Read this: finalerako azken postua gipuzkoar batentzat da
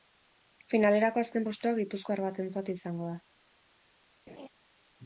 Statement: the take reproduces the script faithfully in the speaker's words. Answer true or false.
false